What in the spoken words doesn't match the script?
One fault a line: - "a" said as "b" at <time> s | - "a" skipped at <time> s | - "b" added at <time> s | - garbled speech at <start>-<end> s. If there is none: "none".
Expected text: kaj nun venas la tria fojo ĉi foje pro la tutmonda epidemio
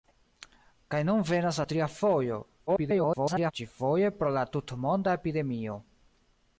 - garbled speech at 2.7-3.5 s